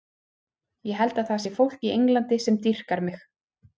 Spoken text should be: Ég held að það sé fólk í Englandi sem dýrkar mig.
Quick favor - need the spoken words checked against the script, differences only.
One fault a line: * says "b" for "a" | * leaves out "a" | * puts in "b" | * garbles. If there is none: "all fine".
all fine